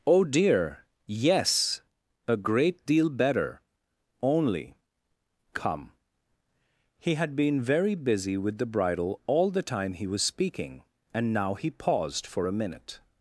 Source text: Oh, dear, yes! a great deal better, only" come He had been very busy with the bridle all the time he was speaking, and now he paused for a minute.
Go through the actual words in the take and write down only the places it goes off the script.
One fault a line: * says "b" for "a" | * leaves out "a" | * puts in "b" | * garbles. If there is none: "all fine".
all fine